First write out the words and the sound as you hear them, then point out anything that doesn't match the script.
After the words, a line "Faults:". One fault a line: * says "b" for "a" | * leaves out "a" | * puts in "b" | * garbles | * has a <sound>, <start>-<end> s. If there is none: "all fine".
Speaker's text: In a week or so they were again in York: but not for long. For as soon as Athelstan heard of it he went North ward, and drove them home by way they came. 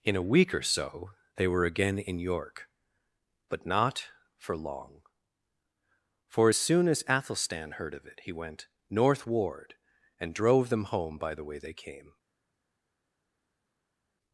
In a week or so they were again in York: but not for long. For as soon as Athelstan heard of it he went North ward, and drove them home by the way they came.
Faults:
* puts in "the"